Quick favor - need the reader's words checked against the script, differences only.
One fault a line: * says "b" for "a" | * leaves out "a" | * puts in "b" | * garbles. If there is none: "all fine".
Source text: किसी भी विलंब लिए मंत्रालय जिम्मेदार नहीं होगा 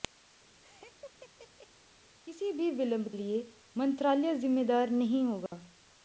all fine